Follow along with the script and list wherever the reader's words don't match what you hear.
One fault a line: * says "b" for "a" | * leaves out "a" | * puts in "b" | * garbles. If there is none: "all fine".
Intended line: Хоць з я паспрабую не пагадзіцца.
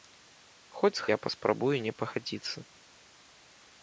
all fine